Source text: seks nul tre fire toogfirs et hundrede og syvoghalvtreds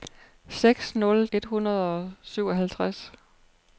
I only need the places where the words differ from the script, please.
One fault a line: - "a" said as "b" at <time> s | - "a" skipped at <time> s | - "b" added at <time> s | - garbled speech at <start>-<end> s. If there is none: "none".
- "tre fire toogfirs" skipped at 1.3 s